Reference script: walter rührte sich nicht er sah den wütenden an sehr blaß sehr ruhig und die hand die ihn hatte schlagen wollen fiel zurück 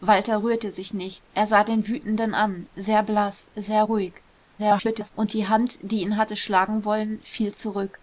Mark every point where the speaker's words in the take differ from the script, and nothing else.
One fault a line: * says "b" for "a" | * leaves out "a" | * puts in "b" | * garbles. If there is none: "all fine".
* garbles